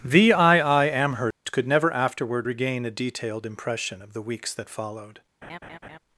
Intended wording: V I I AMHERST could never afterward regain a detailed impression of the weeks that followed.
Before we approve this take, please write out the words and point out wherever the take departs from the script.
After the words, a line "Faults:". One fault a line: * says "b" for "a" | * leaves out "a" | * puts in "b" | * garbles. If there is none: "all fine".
V I I AMHERST could never afterward regain a detailed impression of the weeks that followed.
Faults:
all fine